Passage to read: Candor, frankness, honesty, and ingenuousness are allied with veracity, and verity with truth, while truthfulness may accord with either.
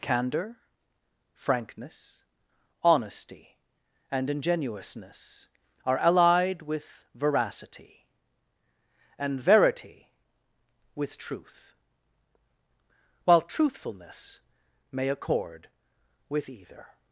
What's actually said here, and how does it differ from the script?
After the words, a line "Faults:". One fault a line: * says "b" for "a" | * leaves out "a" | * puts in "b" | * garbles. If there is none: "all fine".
Candor, frankness, honesty, and ingenuousness are allied with veracity, and verity with truth, while truthfulness may accord with either.
Faults:
all fine